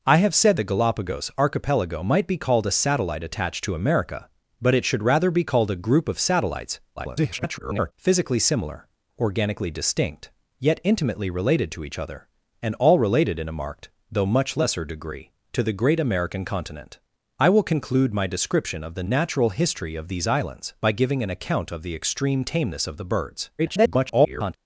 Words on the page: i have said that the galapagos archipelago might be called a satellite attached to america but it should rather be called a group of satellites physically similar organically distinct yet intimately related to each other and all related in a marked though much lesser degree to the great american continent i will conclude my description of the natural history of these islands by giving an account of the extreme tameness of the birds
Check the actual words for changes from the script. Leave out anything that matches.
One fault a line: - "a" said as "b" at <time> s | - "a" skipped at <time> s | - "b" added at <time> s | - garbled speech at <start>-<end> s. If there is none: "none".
- "that" skipped at 0.6 s
- garbled speech at 7.0-7.9 s
- garbled speech at 23.6-24.6 s